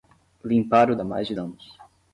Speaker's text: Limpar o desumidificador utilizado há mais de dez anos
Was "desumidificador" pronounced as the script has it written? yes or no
no